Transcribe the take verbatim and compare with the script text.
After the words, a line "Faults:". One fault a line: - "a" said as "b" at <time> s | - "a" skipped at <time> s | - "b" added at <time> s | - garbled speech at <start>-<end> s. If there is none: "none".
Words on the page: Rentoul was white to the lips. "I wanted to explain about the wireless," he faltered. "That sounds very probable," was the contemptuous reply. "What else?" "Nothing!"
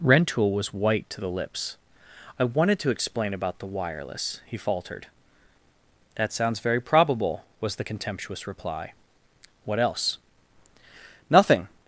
Rentoul was white to the lips. "I wanted to explain about the wireless," he faltered. "That sounds very probable," was the contemptuous reply. "What else?" "Nothing!"
Faults:
none